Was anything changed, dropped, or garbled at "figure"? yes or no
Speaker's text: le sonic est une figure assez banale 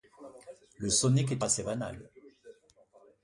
yes